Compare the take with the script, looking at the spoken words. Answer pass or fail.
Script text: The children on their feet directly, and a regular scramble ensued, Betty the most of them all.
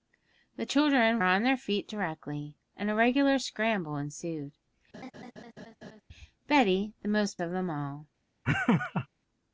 pass